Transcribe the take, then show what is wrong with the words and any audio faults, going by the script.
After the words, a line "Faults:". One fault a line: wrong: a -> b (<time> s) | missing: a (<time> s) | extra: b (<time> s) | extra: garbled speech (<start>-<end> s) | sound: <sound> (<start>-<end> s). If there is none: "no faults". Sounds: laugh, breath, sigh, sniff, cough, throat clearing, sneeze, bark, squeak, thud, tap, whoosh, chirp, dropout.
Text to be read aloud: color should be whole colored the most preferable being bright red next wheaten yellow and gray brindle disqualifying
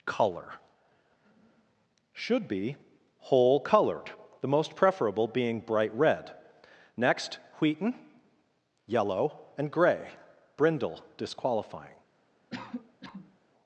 color should be whole colored the most preferable being bright red next wheaten yellow and gray brindle disqualifying
Faults:
sound: cough (12.5-13.4 s)